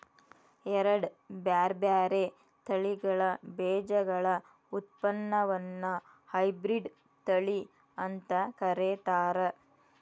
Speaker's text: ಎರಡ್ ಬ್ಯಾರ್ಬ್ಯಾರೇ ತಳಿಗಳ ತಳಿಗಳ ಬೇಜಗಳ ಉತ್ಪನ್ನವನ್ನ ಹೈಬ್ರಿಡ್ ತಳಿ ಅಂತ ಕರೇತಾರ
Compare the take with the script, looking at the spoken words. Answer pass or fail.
fail